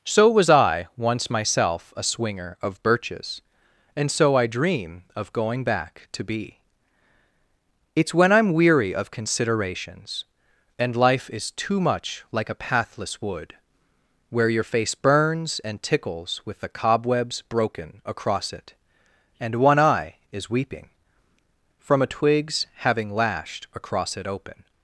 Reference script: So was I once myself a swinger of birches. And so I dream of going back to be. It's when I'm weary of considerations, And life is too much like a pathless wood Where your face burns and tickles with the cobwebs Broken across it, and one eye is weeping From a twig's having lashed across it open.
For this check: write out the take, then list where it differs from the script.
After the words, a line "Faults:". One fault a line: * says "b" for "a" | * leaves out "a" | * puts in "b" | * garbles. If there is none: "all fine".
So was I once myself a swinger of birches. And so I dream of going back to be. It's when I'm weary of considerations, And life is too much like a pathless wood Where your face burns and tickles with the cobwebs Broken across it, and one eye is weeping From a twig's having lashed across it open.
Faults:
all fine